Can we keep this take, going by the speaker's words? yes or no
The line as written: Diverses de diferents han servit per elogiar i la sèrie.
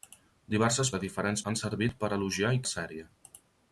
yes